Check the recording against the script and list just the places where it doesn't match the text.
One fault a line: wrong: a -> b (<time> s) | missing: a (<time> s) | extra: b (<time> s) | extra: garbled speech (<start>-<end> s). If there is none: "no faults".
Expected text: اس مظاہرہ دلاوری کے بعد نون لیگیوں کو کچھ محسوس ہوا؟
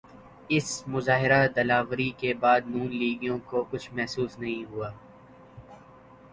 extra: نہیں (4.4 s)